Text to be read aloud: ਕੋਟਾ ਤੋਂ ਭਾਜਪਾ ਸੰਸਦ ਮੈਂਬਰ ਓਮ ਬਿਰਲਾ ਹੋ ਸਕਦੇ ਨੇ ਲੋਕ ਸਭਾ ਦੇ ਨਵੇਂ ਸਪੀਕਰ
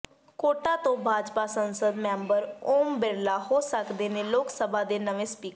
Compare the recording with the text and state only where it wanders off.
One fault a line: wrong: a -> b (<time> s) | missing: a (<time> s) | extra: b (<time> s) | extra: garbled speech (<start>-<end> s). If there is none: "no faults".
no faults